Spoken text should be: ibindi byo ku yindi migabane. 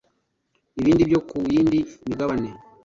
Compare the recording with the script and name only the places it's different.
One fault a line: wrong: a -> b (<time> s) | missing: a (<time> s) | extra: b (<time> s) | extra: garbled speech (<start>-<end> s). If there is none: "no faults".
no faults